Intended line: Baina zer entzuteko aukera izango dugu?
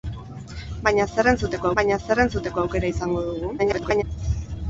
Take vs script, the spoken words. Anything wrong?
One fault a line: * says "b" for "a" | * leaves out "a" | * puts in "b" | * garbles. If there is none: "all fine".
* puts in "baina zer entzuteko"
* garbles